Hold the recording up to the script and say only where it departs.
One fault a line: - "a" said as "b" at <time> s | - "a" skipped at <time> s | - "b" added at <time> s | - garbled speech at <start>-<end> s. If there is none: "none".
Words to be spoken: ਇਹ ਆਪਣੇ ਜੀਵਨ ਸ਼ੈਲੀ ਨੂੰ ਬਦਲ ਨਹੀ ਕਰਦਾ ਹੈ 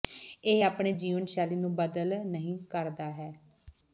none